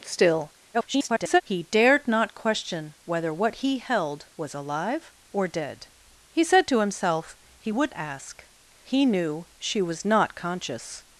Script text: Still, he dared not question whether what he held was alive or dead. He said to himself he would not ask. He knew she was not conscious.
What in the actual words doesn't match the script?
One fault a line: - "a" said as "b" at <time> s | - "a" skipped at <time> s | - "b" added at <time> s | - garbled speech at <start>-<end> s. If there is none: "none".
- garbled speech at 0.7-1.4 s
- "not" skipped at 7.9 s